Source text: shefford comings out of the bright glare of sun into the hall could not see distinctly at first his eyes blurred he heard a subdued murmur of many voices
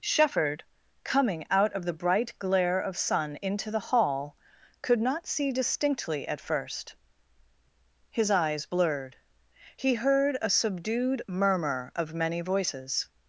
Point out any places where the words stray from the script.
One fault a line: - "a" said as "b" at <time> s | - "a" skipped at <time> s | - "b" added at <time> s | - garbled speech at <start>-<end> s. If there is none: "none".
- "comings" said as "coming" at 1.0 s